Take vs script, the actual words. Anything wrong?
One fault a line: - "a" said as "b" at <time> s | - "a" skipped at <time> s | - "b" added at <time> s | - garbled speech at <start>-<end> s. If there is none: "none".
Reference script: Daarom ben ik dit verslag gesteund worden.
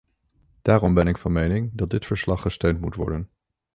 - "van mening dat" added at 1.2 s
- "moet" added at 2.8 s